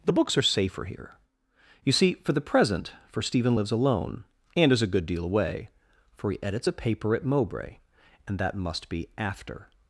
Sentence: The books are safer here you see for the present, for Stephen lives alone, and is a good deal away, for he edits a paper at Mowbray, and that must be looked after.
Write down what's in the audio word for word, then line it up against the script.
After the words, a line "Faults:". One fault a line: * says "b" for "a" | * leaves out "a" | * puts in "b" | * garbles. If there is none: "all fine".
The books are safer here you see for the present, for Stephen lives alone, and is a good deal away, for he edits a paper at Mowbray, and that must be after.
Faults:
* leaves out "looked"